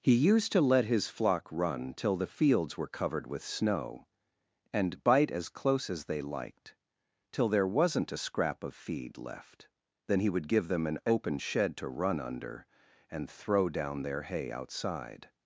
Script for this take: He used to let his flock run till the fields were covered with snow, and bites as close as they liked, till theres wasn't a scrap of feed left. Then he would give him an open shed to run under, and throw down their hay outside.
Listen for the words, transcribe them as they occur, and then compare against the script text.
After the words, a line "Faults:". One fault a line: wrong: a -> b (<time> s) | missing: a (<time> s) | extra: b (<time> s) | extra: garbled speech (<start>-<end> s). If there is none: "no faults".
He used to let his flock run till the fields were covered with snow, and bite as close as they liked, till there wasn't a scrap of feed left. Then he would give them an open shed to run under, and throw down their hay outside.
Faults:
wrong: bites -> bite (5.0 s)
wrong: theres -> there (7.5 s)
wrong: him -> them (10.7 s)